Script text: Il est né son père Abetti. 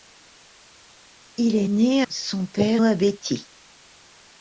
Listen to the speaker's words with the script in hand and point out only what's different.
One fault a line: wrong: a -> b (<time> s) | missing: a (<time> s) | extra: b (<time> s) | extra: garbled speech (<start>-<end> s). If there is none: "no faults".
no faults